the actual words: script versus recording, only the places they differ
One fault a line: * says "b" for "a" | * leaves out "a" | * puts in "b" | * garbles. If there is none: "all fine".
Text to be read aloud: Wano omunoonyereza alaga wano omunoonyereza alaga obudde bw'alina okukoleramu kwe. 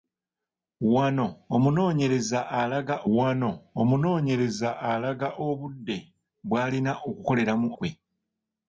all fine